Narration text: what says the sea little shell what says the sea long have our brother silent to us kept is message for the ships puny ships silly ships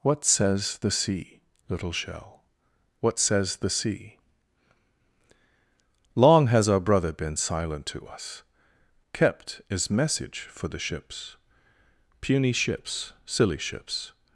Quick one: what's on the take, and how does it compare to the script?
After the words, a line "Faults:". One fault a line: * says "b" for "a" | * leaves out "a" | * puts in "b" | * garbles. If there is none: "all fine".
what says the sea little shell what says the sea long has our brother been silent to us kept is message for the ships puny ships silly ships
Faults:
* says "has" for "have"
* puts in "been"